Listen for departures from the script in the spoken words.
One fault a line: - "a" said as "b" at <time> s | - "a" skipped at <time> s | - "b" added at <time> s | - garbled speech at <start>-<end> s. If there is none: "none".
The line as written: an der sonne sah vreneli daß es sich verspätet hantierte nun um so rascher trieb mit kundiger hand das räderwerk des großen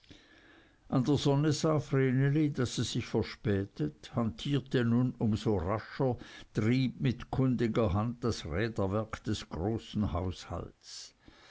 none